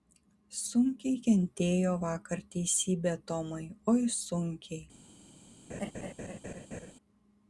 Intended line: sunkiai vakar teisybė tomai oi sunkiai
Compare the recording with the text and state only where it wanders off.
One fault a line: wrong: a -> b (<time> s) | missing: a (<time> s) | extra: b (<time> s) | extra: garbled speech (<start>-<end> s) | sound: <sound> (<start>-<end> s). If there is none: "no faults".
extra: kentėjo (1.2 s)
sound: laugh (5.7-6.9 s)